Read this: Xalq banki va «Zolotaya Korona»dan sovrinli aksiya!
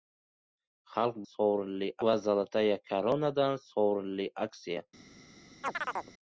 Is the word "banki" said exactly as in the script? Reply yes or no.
no